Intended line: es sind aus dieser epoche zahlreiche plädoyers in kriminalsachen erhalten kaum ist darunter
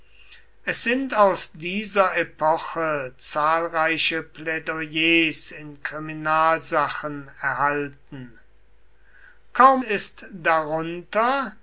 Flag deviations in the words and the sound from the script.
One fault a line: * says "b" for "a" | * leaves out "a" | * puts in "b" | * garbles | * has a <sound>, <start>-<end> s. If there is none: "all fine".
all fine